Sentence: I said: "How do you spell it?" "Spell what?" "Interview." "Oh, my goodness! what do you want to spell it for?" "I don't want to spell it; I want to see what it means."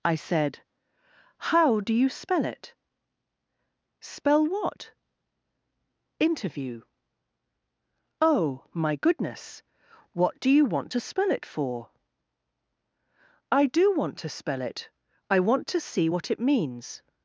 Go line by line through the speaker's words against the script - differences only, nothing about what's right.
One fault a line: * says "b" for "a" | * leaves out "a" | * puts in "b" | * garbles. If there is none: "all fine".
* says "do" for "don't"